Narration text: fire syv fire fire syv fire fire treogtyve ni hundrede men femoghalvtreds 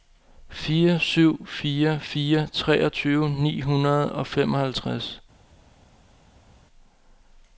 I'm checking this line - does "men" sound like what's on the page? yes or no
no